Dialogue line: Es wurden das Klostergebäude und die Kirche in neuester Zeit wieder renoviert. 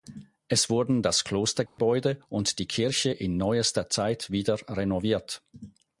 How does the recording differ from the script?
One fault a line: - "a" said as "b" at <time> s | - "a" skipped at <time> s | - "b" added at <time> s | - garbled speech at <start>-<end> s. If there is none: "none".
none